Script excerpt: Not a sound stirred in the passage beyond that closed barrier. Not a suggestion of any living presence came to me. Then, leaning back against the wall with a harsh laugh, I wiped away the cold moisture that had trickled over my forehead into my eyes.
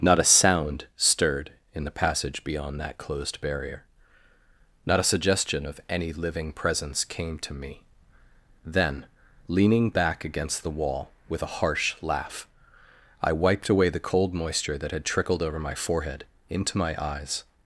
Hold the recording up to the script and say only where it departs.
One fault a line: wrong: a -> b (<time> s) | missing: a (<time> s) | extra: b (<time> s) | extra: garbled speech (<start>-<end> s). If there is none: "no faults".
no faults